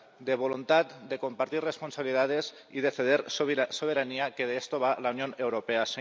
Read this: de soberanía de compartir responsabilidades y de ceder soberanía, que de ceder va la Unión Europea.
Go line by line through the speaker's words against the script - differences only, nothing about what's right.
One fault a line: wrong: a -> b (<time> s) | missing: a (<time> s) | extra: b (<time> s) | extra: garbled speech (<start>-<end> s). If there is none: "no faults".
wrong: soberanía -> voluntad (0.3 s)
wrong: ceder -> esto (4.6 s)